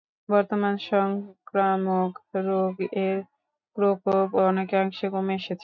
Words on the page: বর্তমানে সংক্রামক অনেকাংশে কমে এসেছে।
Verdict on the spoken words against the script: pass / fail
fail